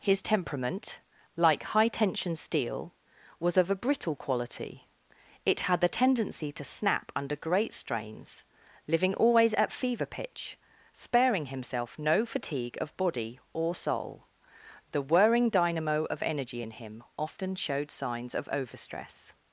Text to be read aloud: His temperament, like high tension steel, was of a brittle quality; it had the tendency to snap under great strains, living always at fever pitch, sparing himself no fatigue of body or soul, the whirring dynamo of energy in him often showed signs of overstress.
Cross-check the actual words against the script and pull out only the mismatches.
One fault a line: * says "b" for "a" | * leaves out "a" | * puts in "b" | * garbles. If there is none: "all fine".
all fine